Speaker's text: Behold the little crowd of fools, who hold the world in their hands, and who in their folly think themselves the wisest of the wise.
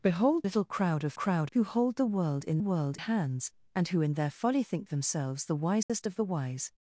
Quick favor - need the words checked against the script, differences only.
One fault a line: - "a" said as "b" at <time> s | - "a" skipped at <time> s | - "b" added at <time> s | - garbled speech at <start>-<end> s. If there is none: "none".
- "the" skipped at 0.5 s
- "fools" said as "crowd" at 1.1 s
- "their" said as "world" at 2.6 s